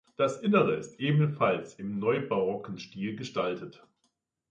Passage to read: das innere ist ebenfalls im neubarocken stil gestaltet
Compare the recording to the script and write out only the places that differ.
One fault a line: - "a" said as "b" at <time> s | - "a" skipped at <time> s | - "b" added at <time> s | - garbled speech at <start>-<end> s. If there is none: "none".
none